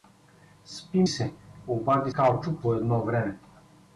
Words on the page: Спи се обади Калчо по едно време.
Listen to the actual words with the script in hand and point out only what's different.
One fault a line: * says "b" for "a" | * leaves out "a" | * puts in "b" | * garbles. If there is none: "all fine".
all fine